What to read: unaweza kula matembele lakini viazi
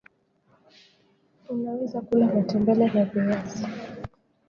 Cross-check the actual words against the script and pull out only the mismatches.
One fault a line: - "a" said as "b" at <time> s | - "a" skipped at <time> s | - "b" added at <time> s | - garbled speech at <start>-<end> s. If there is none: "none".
- "lakini" said as "na" at 2.9 s